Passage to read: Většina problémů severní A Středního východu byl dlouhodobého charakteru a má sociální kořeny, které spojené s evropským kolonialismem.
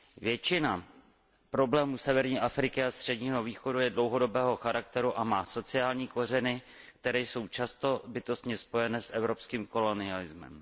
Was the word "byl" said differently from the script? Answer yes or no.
yes